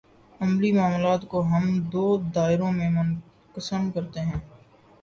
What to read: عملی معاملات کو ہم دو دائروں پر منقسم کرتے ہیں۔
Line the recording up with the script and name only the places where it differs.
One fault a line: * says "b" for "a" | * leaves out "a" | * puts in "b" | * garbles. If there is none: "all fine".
* says "میں" for "پر"